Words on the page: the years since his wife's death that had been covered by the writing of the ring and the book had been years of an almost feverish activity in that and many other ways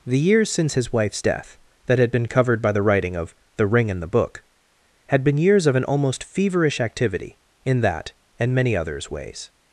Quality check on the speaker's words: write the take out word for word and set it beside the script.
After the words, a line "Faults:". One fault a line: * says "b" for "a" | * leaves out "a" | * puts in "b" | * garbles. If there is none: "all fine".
the years since his wife's death that had been covered by the writing of the ring and the book had been years of an almost feverish activity in that and many others ways
Faults:
* says "others" for "other"